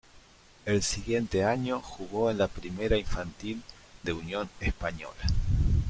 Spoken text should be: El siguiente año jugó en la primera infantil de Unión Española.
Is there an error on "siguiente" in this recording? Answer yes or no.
no